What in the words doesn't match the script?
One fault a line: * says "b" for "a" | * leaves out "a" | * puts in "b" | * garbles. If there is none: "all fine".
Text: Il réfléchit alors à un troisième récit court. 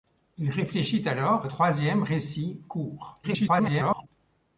* leaves out "à"
* garbles